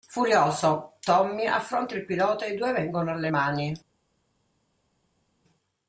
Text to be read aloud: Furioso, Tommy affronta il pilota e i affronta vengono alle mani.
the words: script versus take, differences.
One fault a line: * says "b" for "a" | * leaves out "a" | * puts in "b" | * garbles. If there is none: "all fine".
* says "due" for "affronta"